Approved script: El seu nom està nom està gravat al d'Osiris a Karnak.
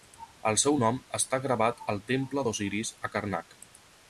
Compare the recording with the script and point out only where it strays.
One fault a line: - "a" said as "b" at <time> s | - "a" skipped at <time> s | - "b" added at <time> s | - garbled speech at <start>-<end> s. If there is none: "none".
- "nom està" skipped at 1.4 s
- "temple" added at 2.1 s